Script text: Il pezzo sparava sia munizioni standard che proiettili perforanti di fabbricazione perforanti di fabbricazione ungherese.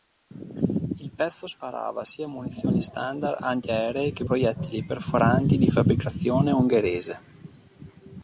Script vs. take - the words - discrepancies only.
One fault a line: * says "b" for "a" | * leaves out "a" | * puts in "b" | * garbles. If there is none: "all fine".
* puts in "antiaeree"
* leaves out "perforanti di fabbricazione"